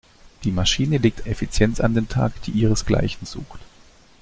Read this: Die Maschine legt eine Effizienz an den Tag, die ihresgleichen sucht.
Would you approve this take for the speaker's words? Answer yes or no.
no